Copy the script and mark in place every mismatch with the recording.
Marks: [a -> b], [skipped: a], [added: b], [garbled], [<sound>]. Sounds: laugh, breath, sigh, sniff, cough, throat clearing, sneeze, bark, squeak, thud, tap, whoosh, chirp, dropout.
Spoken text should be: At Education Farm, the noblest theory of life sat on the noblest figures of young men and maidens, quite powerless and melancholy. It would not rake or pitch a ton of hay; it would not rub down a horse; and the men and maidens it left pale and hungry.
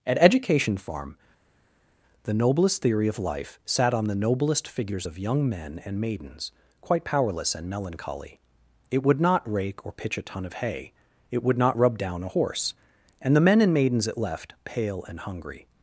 At Education Farm, the noblest theory of life sat on the noblest figures of young men and maidens, quite powerless and melancholy. It would not rake or pitch a ton of hay; it would not rub down a horse; and the men and maidens it left pale and hungry.